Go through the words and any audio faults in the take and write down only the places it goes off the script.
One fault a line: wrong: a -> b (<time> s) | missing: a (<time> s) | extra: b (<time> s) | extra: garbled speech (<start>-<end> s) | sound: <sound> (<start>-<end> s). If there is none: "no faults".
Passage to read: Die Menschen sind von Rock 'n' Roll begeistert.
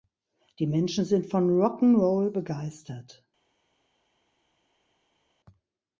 no faults